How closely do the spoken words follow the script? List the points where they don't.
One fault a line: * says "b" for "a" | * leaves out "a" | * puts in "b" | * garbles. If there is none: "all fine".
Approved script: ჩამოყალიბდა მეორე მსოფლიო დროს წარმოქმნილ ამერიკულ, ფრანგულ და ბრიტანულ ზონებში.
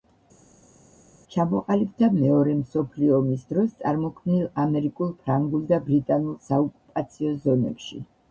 * puts in "ომის"
* puts in "საოკუპაციო"